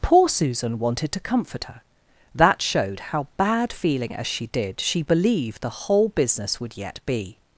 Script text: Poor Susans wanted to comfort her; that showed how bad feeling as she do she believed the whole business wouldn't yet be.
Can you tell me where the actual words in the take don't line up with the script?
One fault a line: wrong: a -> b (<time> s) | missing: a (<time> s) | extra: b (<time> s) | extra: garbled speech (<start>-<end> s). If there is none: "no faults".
wrong: Susans -> Susan (0.3 s)
wrong: do -> did (4.5 s)
wrong: wouldn't -> would (6.6 s)